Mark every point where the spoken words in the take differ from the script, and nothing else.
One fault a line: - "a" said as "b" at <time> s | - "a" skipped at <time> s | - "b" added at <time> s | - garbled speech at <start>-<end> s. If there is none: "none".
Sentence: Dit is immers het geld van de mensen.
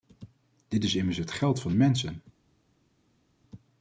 none